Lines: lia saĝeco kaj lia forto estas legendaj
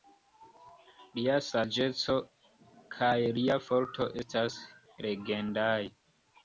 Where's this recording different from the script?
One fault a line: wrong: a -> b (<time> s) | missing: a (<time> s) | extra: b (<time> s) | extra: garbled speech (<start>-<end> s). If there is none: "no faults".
no faults